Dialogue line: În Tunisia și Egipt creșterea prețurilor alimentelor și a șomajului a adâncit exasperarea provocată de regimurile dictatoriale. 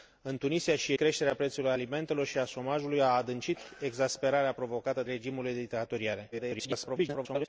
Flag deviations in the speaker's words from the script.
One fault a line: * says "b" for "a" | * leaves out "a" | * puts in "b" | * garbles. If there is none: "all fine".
* leaves out "Egipt"
* leaves out "de"
* garbles